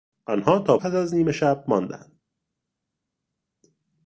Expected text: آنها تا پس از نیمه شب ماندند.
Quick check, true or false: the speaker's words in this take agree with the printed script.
true